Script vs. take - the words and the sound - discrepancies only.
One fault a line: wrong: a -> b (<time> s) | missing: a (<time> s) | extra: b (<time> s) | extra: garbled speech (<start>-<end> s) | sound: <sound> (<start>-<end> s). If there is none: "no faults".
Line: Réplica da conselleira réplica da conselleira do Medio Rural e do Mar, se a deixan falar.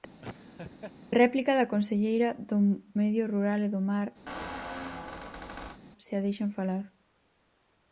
sound: laugh (0.2-0.9 s)
missing: réplica da conselleira (2.3 s)
sound: squeak (4.3-5.8 s)